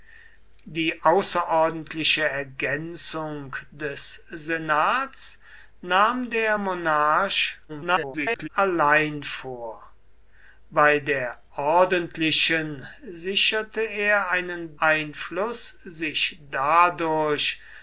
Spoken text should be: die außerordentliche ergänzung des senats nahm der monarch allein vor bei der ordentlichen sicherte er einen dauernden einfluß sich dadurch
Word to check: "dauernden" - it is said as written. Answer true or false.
false